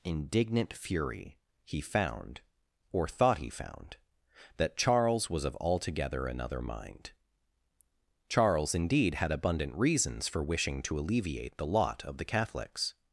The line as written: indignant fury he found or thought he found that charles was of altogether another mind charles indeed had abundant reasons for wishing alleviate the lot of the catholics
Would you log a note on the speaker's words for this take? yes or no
yes